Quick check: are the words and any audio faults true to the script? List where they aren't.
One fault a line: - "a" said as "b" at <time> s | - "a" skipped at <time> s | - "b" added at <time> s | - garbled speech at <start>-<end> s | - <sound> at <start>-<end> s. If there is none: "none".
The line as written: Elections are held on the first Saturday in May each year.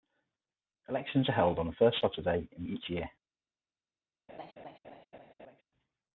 - "May" skipped at 2.7 s
- laugh at 4.3-5.6 s